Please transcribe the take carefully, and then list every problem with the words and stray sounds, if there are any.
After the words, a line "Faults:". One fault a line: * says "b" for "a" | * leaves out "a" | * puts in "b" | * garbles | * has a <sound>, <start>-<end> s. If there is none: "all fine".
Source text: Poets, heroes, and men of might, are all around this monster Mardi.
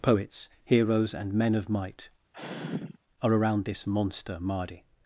Poets, heroes, and men of might, are around this monster Mardi.
Faults:
* has a sigh, 2.3-3.0 s
* leaves out "all"